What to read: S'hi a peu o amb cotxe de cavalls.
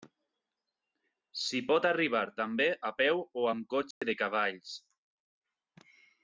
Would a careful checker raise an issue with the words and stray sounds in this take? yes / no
yes